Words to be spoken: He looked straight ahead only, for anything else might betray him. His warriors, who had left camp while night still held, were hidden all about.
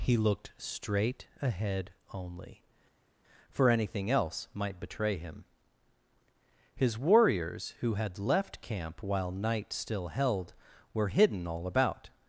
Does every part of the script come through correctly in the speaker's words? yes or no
yes